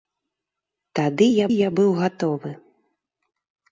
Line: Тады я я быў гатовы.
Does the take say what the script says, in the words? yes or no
yes